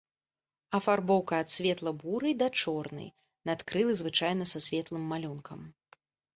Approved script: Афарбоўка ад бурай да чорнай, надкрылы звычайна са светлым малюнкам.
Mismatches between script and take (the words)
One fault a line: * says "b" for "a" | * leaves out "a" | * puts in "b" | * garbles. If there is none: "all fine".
* puts in "светла"